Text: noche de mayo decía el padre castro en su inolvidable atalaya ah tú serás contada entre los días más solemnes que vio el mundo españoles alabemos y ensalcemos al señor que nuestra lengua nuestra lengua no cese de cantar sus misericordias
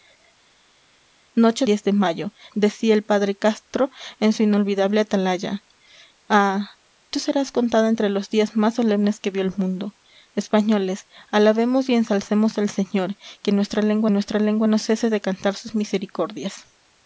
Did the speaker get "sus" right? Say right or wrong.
right